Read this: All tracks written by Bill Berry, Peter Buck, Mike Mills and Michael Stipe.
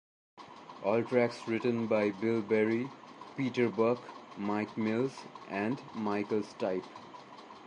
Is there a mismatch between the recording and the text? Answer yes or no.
no